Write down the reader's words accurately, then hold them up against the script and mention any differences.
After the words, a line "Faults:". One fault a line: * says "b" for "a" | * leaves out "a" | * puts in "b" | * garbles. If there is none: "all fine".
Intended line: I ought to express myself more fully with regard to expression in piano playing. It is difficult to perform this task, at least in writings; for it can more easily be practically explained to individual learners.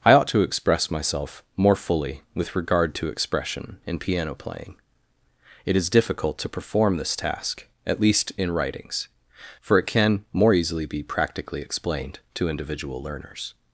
I ought to express myself more fully with regard to expression in piano playing. It is difficult to perform this task, at least in writings; for it can more easily be practically explained to individual learners.
Faults:
all fine